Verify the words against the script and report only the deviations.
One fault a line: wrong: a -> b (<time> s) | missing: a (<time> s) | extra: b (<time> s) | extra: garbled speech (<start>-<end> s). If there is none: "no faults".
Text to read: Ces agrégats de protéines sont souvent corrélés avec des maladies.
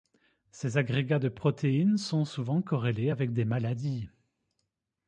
no faults